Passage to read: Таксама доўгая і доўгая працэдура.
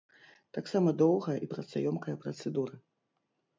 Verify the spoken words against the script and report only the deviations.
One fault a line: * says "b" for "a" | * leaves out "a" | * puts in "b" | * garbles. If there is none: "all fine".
* says "працаёмкая" for "доўгая"